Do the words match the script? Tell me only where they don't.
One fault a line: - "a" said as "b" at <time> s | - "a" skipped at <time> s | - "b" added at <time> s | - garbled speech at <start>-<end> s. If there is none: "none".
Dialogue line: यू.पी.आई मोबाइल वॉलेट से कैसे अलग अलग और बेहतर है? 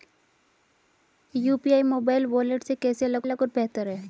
none